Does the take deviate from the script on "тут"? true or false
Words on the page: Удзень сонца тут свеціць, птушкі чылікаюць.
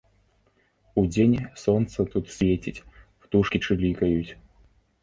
false